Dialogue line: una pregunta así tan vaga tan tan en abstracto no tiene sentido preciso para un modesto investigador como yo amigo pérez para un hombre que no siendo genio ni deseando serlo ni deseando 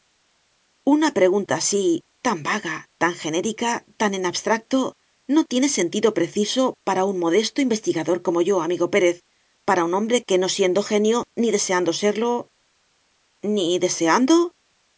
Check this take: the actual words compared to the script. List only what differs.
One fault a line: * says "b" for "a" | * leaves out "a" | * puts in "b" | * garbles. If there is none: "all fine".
* puts in "genérica"